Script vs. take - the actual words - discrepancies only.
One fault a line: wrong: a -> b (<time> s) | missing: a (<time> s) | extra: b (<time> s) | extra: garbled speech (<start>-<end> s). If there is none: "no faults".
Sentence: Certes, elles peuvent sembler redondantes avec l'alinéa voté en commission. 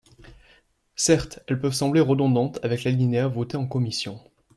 no faults